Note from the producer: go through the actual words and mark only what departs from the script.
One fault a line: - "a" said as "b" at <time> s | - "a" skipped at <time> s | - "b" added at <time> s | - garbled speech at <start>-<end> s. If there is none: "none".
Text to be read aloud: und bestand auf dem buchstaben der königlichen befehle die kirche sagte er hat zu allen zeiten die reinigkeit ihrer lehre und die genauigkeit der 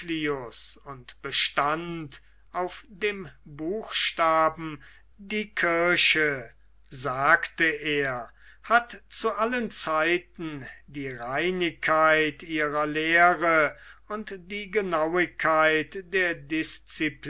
- "der königlichen befehle" skipped at 4.8 s